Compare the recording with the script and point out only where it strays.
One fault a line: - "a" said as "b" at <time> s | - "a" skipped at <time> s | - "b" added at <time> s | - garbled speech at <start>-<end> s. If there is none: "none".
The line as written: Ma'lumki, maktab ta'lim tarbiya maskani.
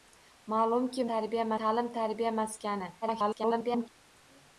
- "maktab" said as "tarbiya" at 1.1 s
- garbled speech at 3.0-3.9 s